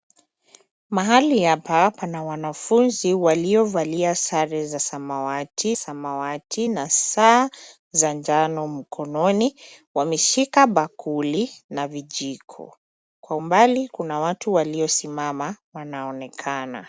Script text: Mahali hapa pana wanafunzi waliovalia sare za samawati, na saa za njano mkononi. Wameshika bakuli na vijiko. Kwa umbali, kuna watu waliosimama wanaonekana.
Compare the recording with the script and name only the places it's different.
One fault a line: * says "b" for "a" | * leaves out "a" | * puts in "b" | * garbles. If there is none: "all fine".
* puts in "samawati"